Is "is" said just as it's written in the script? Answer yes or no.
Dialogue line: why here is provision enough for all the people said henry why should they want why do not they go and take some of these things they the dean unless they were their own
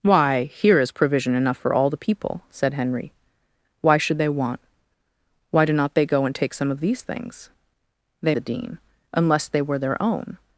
yes